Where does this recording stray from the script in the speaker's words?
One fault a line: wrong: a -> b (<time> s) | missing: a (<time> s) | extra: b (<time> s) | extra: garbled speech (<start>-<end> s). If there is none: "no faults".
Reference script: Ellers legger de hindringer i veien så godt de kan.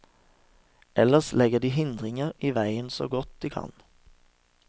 no faults